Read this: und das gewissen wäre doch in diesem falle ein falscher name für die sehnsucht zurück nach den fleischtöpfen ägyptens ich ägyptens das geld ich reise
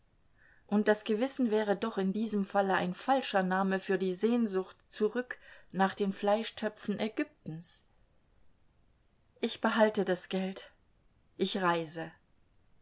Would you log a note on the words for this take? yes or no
yes